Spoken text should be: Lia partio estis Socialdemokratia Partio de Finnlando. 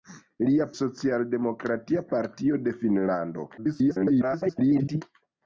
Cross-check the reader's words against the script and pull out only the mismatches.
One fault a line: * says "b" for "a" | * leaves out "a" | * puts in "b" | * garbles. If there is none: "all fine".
* leaves out "partio estis"
* garbles